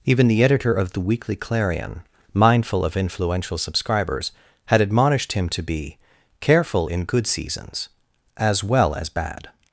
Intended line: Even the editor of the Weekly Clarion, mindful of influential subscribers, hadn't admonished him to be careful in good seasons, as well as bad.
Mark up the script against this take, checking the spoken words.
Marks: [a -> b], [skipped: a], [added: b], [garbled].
Even the editor of the Weekly Clarion, mindful of influential subscribers, [hadn't -> had] admonished him to be careful in good seasons, as well as bad.